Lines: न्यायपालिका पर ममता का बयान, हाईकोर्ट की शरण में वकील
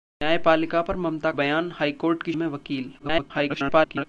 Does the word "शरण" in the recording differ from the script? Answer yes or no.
yes